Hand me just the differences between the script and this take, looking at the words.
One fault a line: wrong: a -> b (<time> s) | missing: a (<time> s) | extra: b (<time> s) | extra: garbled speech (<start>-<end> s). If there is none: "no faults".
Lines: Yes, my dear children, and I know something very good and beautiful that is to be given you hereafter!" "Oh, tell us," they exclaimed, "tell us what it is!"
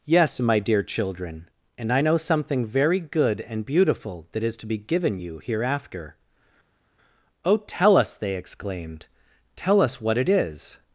no faults